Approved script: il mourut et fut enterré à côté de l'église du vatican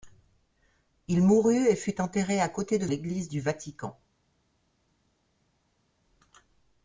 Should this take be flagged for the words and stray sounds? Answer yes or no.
no